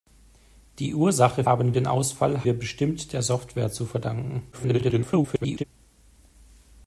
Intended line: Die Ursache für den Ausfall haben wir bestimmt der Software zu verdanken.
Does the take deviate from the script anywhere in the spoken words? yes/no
yes